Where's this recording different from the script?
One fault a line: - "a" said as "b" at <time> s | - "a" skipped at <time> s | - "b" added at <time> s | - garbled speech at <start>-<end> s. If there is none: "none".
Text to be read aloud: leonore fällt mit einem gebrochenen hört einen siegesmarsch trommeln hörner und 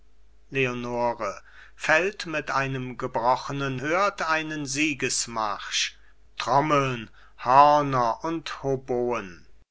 none